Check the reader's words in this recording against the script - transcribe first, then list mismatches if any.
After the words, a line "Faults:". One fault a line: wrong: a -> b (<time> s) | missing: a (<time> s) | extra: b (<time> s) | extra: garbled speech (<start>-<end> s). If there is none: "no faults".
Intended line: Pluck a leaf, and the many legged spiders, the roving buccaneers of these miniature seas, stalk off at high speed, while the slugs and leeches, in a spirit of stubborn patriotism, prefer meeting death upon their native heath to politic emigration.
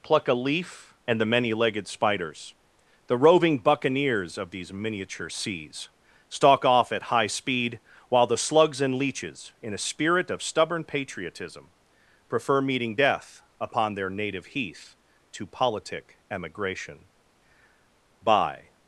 Pluck a leaf, and the many legged spiders, the roving buccaneers of these miniature seas, stalk off at high speed, while the slugs and leeches, in a spirit of stubborn patriotism, prefer meeting death upon their native heath to politic emigration. By
Faults:
extra: By (18.2 s)